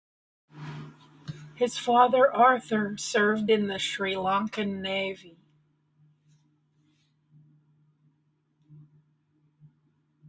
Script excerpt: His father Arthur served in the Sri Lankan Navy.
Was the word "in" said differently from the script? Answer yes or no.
no